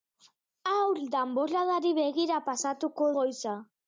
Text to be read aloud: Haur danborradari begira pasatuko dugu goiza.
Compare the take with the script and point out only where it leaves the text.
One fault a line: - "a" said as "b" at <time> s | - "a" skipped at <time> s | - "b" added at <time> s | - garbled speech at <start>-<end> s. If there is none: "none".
- "dugu" skipped at 3.1 s